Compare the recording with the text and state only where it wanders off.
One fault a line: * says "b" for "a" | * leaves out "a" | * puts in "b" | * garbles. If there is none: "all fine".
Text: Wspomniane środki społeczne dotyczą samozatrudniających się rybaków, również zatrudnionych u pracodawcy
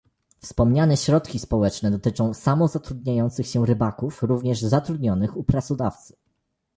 all fine